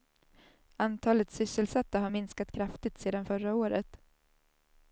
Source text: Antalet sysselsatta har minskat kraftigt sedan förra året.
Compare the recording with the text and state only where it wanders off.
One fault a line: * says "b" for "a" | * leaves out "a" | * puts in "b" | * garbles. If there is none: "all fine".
all fine